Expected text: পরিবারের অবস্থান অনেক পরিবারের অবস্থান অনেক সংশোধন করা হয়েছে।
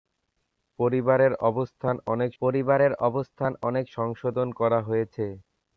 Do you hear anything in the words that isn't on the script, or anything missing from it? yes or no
no